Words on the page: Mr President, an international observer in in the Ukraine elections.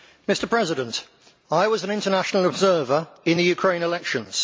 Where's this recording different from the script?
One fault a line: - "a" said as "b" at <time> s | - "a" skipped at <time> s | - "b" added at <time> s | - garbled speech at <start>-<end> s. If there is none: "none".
- "I was" added at 1.5 s
- "in" skipped at 3.4 s